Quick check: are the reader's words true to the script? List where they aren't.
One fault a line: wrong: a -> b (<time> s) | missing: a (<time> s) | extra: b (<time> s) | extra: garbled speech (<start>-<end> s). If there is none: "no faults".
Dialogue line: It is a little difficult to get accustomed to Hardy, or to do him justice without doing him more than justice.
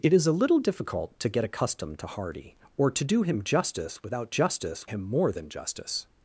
wrong: doing -> justice (4.3 s)